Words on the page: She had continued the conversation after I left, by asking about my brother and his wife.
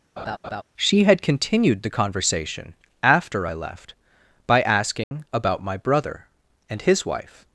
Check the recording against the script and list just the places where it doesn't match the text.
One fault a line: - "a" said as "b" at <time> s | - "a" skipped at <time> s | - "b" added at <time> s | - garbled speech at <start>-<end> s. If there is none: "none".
none